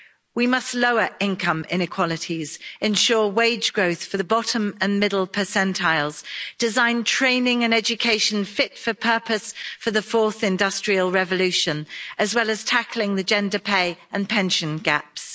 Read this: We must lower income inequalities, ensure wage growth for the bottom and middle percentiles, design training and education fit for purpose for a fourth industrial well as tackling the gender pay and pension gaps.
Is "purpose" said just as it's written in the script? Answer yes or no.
yes